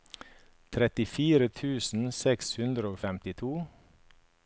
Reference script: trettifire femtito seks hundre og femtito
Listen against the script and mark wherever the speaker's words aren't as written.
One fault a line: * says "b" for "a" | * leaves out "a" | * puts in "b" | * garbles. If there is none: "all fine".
* says "tusen" for "femtito"